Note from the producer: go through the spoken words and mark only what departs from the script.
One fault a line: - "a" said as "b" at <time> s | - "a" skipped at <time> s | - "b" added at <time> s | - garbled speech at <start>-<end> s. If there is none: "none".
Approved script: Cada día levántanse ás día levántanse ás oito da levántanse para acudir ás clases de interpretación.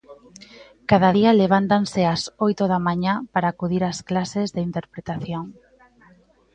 - "día levántanse ás" skipped at 2.2 s
- "levántanse" said as "mañá" at 2.9 s